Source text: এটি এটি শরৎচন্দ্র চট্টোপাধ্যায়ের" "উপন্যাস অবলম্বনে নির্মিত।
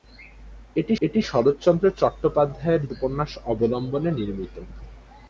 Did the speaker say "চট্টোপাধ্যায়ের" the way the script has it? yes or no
yes